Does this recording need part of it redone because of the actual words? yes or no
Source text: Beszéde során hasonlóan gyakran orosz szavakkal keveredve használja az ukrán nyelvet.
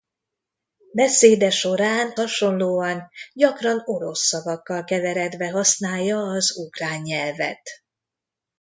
no